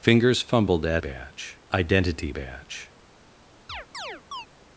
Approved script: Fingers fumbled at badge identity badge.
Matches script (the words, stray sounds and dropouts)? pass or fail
fail